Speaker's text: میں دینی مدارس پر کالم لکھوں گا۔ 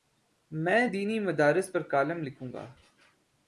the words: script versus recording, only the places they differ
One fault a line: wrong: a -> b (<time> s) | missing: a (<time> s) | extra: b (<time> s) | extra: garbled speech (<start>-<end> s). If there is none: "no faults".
no faults